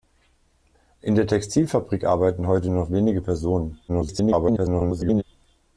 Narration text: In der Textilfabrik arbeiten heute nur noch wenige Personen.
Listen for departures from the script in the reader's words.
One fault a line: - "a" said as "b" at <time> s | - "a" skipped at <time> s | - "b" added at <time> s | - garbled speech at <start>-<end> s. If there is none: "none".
- garbled speech at 3.9-5.2 s